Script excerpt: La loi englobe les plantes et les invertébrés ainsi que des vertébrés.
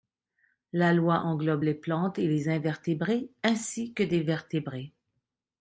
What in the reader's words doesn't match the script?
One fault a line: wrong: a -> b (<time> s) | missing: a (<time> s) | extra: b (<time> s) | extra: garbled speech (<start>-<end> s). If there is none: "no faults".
no faults